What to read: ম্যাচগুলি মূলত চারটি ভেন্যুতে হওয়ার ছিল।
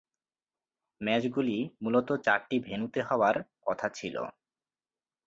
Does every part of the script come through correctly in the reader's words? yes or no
no